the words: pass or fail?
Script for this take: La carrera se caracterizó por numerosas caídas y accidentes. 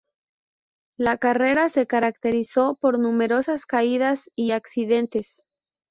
pass